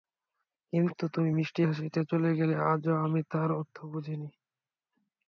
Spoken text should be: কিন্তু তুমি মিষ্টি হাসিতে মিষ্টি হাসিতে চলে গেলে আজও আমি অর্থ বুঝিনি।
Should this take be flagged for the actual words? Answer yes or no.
yes